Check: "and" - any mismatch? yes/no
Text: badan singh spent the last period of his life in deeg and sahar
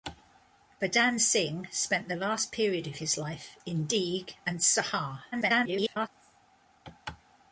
no